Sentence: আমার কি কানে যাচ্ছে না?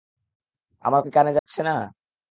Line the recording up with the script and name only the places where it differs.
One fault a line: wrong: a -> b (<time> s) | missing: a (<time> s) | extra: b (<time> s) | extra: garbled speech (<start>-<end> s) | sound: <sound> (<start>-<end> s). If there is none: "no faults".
sound: dropout (1.4-1.5 s)